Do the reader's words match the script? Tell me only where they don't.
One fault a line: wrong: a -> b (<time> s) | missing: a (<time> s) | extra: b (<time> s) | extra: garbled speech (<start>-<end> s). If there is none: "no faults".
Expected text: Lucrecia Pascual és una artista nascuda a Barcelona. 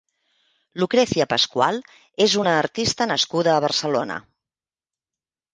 no faults